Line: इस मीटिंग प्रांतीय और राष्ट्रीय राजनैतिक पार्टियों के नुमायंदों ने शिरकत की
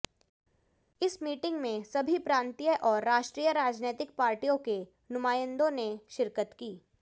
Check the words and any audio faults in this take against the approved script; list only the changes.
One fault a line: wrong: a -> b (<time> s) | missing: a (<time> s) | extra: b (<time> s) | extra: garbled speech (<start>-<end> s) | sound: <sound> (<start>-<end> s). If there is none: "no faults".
extra: में सभी (1.6 s)